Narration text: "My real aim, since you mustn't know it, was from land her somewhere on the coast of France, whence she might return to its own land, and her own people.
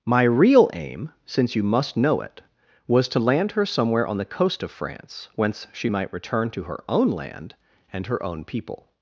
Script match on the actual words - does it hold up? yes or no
no